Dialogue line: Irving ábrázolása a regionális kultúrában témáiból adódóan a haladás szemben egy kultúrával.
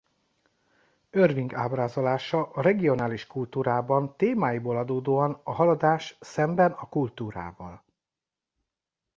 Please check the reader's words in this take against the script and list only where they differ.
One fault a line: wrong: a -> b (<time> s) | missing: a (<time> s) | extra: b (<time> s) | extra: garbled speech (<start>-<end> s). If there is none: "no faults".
wrong: egy -> a (6.7 s)